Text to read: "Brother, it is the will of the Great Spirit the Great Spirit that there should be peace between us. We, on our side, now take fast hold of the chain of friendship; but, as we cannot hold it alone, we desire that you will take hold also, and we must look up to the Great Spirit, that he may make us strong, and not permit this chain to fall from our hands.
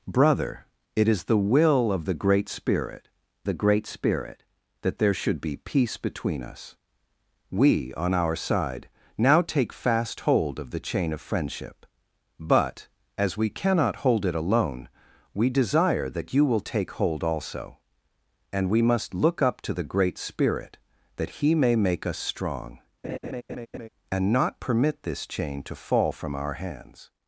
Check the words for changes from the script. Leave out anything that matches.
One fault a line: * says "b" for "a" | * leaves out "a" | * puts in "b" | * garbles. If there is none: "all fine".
all fine